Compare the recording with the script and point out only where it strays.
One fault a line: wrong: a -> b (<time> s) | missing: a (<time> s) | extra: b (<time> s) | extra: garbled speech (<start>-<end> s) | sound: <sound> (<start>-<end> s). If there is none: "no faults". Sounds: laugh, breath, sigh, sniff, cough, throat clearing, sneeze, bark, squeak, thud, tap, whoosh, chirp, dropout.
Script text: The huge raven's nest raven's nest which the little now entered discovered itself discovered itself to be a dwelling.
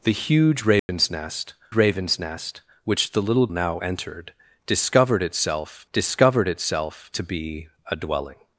sound: dropout (0.8-0.9 s)